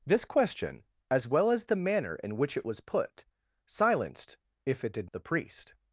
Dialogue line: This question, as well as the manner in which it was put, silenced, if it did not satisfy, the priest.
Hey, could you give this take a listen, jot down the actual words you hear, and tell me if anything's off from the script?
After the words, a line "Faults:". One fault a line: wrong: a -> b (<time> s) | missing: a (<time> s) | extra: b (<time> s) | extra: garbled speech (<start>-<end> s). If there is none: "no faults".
This question, as well as the manner in which it was put, silenced, if it did the priest.
Faults:
missing: not satisfy (5.1 s)